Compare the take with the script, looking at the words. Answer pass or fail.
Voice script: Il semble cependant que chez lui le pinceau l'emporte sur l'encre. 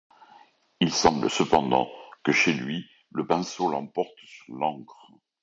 pass